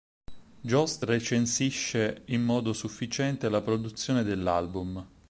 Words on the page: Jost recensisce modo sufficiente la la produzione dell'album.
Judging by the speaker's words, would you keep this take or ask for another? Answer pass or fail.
fail